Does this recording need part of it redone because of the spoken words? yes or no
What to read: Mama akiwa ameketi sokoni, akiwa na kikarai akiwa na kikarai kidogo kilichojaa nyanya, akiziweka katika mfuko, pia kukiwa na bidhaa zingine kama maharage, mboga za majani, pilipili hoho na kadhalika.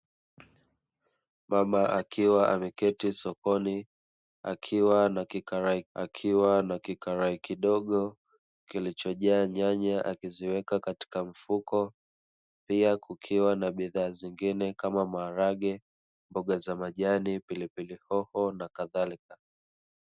no